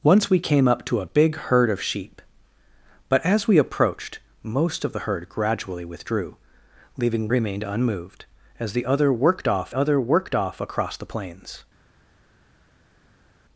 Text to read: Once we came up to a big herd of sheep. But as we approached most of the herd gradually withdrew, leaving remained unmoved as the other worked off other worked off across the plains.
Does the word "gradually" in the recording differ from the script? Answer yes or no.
no